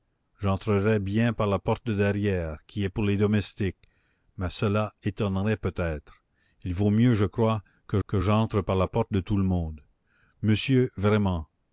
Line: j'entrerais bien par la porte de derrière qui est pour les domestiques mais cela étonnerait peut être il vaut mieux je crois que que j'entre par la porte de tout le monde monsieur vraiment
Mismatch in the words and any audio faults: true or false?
false